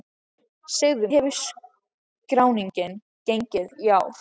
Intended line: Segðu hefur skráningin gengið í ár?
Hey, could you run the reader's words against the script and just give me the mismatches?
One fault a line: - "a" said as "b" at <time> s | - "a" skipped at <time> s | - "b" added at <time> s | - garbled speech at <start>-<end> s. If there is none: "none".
none